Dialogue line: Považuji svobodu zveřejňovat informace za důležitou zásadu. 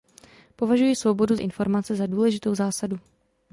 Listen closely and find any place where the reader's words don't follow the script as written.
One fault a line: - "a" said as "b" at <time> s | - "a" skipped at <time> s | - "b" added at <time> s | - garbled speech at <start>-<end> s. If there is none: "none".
- "zveřejňovat" skipped at 1.4 s